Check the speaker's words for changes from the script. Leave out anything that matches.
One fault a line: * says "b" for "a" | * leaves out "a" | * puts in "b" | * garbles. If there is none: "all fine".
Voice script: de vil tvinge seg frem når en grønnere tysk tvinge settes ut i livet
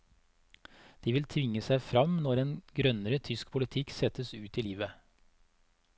* says "politikk" for "tvinge"